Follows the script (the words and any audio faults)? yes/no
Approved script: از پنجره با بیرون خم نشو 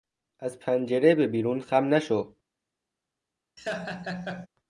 no